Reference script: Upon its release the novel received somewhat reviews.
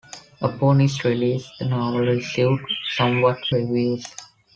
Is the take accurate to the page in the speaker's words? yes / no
yes